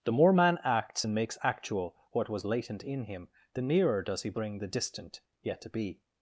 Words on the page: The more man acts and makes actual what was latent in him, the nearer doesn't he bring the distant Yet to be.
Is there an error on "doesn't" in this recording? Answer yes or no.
yes